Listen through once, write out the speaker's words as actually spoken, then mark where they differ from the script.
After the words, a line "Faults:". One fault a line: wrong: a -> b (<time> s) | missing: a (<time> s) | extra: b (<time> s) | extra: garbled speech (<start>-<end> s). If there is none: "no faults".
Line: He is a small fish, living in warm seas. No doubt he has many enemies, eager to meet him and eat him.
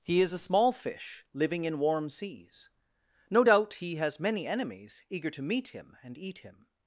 He is a small fish, living in warm seas. No doubt he has many enemies, eager to meet him and eat him.
Faults:
no faults